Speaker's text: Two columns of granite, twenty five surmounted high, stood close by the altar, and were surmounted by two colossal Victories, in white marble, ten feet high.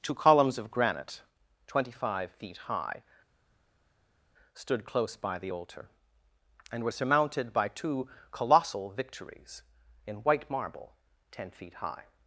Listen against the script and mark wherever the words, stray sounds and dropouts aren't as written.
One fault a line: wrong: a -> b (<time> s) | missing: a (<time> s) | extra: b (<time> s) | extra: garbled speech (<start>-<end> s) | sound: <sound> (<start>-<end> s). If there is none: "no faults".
wrong: surmounted -> feet (2.3 s)